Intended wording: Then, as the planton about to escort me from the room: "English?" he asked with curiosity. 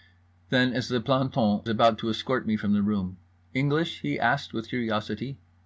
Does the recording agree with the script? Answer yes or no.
yes